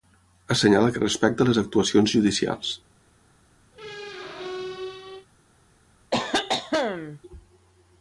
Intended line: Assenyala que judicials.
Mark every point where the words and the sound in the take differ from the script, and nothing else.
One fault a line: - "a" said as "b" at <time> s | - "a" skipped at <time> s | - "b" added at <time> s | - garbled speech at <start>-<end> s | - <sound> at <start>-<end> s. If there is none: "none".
- "respecta les actuacions" added at 1.0 s
- squeak at 3.7-5.3 s
- cough at 6.1-7.2 s